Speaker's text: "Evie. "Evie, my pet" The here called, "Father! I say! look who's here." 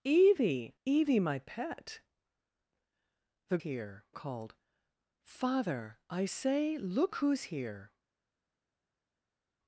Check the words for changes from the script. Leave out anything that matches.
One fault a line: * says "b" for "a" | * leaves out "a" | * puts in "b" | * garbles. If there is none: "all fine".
all fine